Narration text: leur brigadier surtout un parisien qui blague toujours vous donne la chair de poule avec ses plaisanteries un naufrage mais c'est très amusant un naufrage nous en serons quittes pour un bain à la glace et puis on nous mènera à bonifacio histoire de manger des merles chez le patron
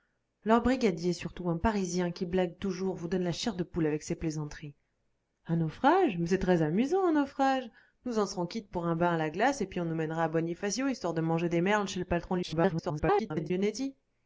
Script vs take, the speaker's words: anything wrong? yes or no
yes